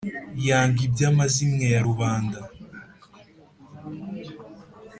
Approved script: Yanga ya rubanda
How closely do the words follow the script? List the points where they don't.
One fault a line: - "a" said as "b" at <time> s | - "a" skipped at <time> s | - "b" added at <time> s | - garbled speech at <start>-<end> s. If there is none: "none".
- "iby'amazimwe" added at 0.9 s